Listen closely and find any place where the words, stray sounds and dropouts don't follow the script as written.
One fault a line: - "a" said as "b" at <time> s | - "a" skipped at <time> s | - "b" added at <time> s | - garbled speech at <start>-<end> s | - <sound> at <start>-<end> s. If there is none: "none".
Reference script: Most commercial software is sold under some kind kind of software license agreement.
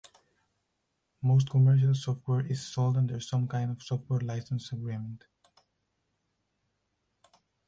- "kind" skipped at 3.7 s